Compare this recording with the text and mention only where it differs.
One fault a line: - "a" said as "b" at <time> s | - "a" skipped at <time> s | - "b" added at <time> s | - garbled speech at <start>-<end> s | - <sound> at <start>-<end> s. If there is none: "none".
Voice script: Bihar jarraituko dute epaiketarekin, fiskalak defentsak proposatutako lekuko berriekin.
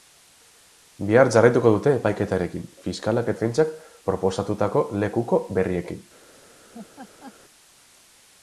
- laugh at 6.7-7.3 s